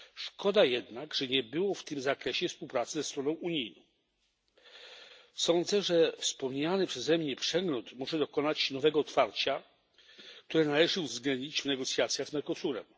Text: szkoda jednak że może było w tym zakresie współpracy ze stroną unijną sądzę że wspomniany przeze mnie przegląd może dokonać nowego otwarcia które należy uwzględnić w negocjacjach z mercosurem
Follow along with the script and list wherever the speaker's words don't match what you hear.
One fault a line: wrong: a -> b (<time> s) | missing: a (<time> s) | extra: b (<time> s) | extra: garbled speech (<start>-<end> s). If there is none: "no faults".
wrong: może -> nie (1.3 s)